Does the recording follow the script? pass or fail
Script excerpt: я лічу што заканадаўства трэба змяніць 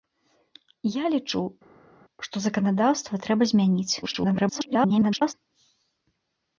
fail